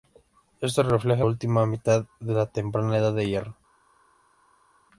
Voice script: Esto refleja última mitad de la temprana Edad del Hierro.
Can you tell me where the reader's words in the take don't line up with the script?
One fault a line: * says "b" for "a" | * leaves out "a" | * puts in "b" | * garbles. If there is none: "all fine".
all fine